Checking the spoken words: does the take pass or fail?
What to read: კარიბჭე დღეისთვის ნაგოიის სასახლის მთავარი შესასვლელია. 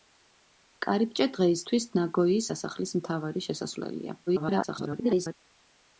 fail